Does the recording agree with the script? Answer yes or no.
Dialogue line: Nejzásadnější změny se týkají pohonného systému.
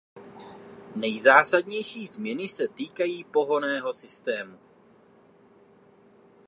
yes